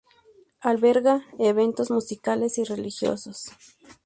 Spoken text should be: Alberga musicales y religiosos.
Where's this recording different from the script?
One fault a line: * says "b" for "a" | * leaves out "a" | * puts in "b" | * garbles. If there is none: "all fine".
* puts in "eventos"